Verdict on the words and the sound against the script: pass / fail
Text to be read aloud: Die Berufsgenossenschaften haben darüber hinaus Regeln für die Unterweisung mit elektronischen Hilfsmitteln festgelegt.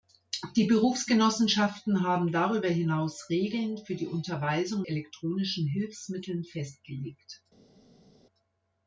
fail